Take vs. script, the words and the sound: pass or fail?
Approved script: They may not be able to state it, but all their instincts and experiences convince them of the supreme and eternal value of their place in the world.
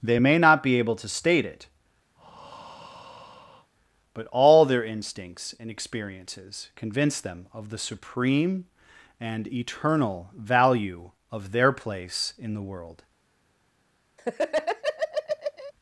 fail